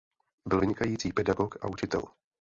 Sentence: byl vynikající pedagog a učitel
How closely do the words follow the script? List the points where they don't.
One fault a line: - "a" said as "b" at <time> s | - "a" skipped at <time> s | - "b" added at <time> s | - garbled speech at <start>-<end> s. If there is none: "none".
none